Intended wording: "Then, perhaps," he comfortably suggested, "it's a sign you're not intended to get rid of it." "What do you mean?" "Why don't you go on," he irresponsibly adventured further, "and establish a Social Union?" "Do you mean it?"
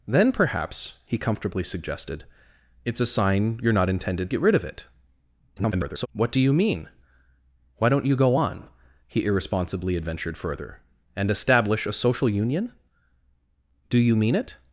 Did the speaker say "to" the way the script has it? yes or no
no